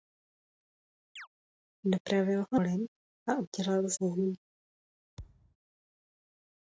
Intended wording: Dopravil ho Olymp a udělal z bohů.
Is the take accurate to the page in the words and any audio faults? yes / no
no